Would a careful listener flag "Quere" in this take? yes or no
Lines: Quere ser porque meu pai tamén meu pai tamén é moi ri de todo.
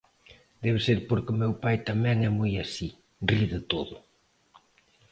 yes